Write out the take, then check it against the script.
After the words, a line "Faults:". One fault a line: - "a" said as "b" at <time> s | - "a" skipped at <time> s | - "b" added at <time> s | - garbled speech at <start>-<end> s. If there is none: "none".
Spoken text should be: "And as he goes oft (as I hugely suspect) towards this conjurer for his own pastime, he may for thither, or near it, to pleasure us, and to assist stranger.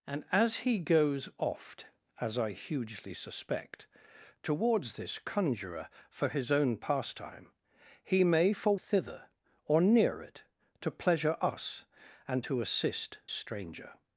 "And as he goes oft (as I hugely suspect) towards this conjurer for his own pastime, he may for thither, or near it, to pleasure us, and to assist stranger.
Faults:
none